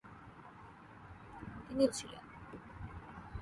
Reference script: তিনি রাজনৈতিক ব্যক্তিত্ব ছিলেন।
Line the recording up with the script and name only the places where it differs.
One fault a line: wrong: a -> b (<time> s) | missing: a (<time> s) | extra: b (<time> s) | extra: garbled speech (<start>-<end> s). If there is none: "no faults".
missing: রাজনৈতিক ব্যক্তিত্ব (1.8 s)